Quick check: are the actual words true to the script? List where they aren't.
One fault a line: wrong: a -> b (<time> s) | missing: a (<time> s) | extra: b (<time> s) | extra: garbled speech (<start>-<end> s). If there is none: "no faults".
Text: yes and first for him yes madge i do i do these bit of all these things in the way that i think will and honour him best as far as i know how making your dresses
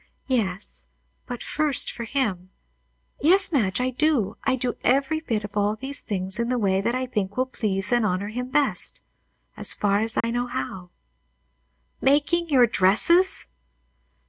wrong: and -> but (1.3 s)
wrong: these -> every (4.8 s)
extra: please (7.5 s)